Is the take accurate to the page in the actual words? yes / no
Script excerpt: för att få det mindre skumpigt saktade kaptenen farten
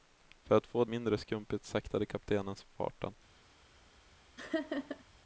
no